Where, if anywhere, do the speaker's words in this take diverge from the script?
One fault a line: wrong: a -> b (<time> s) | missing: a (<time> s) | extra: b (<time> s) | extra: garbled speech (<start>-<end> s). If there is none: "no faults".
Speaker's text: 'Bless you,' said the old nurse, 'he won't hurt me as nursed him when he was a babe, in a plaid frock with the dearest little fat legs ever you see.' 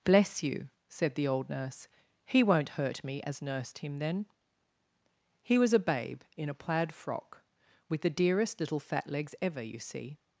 wrong: when -> then (4.0 s)